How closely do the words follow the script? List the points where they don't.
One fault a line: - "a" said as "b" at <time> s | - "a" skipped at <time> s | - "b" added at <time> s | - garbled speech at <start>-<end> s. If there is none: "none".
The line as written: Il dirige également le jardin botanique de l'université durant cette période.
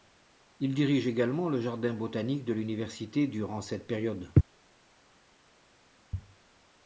none